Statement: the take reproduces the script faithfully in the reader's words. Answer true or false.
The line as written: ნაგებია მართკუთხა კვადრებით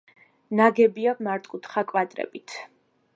true